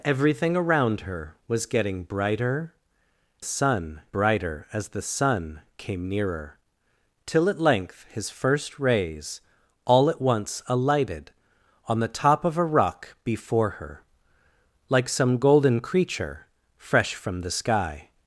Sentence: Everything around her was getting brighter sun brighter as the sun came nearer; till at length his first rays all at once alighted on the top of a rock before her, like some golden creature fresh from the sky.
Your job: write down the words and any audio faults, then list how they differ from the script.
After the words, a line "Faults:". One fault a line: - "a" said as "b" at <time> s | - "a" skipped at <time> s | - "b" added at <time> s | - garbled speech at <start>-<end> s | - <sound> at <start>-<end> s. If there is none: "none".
Everything around her was getting brighter sun brighter as the sun came nearer; till at length his first rays all at once alighted on the top of a rock before her, like some golden creature fresh from the sky.
Faults:
none